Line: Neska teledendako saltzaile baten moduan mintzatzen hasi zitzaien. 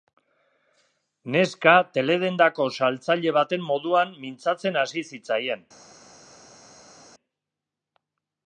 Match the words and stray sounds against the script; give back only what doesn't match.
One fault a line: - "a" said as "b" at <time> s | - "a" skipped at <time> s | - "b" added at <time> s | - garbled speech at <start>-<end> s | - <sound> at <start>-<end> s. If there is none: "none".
none